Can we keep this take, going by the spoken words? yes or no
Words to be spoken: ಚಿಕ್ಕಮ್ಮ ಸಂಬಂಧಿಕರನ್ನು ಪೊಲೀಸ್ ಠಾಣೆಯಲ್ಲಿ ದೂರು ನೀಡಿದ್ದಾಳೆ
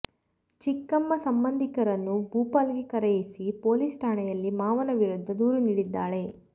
no